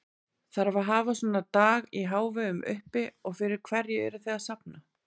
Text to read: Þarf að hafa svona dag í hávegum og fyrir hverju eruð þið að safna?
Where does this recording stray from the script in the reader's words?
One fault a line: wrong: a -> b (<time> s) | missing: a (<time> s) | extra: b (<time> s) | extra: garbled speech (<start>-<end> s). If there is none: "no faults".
extra: uppi (2.8 s)